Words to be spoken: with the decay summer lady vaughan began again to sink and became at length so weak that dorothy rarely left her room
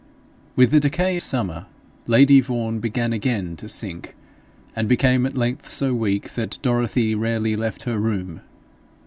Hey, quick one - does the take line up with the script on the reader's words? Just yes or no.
yes